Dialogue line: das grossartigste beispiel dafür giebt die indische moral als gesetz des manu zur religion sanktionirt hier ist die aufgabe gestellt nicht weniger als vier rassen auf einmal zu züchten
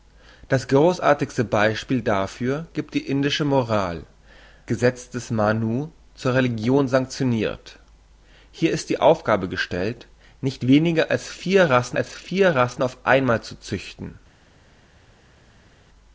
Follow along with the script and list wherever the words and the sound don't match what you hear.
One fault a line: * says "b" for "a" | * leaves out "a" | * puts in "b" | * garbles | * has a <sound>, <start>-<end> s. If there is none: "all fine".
* leaves out "als"
* puts in "als vier rassen"